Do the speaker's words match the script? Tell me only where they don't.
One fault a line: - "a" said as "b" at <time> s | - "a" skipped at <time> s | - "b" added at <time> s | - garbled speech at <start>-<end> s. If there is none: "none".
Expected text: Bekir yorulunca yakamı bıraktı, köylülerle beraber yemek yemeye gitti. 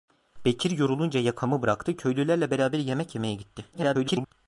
- garbled speech at 3.7-4.3 s